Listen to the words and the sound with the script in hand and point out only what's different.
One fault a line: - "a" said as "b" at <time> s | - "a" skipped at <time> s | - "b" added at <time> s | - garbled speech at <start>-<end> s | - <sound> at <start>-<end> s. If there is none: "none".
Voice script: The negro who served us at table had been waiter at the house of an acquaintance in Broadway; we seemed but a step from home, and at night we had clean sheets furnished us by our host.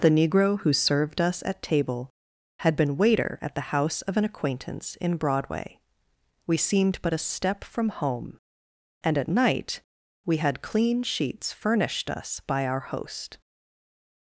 none